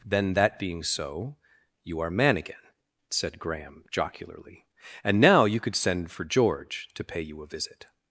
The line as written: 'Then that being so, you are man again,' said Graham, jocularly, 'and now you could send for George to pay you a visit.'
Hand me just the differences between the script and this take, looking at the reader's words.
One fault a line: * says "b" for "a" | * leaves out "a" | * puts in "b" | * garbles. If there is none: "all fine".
all fine